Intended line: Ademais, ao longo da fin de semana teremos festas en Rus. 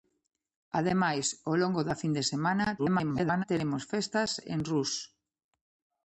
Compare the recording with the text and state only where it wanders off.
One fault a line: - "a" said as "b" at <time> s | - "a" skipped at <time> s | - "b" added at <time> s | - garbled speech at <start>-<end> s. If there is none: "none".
- garbled speech at 2.8-3.4 s